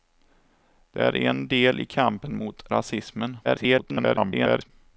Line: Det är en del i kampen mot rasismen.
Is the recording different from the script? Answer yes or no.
yes